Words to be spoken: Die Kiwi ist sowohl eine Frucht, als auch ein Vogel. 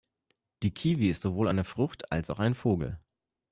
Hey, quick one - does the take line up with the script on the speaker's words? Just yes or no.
yes